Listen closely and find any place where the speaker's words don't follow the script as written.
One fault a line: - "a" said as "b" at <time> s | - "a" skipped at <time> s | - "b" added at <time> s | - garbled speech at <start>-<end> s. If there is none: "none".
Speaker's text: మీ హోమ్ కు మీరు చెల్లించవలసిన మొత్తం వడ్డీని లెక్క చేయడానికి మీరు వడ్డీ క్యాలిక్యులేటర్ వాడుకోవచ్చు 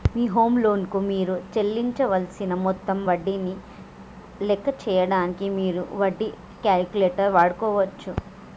- "లోన్" added at 0.6 s